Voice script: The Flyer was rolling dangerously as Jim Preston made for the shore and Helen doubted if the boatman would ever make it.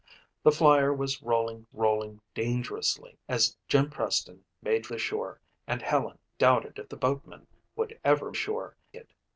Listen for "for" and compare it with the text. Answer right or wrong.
wrong